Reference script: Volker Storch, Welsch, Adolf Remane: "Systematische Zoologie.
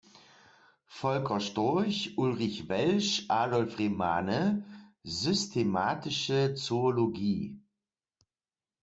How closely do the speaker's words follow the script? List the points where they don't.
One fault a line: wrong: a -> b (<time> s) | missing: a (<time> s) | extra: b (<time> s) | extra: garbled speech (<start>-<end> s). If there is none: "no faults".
extra: Ulrich (2.2 s)